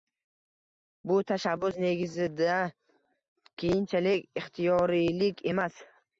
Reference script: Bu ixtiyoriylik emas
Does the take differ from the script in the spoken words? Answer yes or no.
yes